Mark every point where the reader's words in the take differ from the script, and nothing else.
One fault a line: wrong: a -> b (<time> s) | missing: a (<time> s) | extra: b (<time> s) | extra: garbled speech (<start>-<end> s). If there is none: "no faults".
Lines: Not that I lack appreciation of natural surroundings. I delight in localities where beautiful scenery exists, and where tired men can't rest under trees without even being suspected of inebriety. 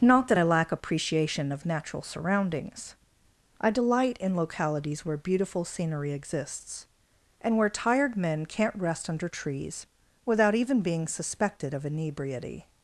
no faults